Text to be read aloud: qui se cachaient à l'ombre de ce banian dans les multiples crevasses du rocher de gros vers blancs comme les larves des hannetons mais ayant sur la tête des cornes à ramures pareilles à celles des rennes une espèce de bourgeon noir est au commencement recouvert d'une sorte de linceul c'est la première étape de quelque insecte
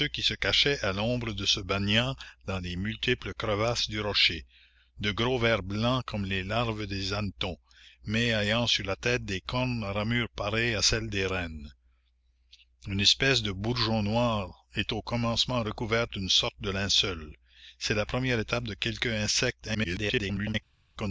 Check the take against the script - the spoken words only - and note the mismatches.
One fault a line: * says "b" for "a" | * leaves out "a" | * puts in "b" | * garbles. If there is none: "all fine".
* garbles